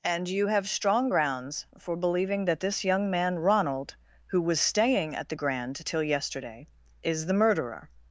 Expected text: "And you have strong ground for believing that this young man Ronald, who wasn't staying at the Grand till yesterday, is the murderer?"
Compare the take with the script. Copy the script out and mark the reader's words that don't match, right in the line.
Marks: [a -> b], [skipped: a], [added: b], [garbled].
"And you have strong [ground -> grounds] for believing that this young man Ronald, who [wasn't -> was] staying at the Grand till yesterday, is the murderer?"